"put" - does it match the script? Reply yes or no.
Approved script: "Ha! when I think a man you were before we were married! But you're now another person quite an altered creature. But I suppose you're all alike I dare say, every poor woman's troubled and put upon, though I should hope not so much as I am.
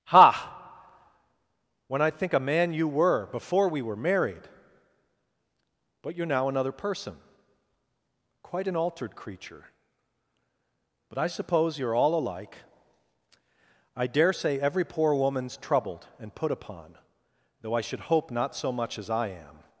yes